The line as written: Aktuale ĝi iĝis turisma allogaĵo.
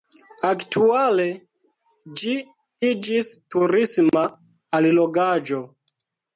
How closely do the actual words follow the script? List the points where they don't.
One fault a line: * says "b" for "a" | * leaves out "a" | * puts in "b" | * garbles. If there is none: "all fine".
all fine